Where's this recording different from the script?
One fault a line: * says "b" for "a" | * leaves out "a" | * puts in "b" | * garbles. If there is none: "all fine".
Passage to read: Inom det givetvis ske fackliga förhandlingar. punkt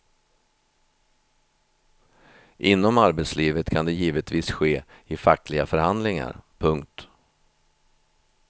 * puts in "arbetslivet kan"
* puts in "i"